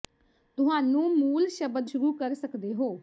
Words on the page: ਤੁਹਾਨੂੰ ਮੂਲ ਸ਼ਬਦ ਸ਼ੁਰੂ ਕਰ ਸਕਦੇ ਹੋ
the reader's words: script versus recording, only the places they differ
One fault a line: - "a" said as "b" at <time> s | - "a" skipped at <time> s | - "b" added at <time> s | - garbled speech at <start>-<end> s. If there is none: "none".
none